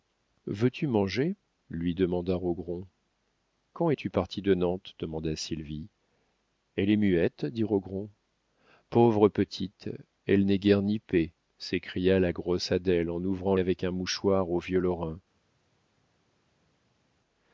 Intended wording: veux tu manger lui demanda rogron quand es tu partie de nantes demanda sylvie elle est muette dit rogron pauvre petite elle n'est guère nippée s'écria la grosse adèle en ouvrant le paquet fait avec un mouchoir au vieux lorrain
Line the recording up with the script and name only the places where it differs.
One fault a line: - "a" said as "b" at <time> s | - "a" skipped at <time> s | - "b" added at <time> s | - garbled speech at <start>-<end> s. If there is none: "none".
- "le paquet fait" skipped at 13.6 s